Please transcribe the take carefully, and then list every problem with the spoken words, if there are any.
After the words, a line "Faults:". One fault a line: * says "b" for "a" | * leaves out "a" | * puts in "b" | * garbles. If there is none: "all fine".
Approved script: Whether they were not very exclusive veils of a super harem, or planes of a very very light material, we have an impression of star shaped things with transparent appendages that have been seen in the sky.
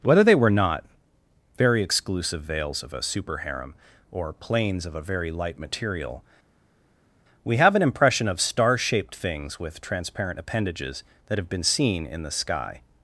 Whether they were not very exclusive veils of a super harem, or planes of a very light material, we have an impression of star shaped things with transparent appendages that have been seen in the sky.
Faults:
* leaves out "very"